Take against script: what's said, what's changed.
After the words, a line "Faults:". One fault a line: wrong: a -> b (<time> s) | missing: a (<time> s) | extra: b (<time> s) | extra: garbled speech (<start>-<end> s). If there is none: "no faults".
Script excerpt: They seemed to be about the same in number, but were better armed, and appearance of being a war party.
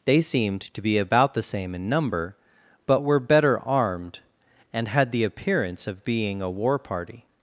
They seemed to be about the same in number, but were better armed, and had the appearance of being a war party.
Faults:
extra: had the (4.9 s)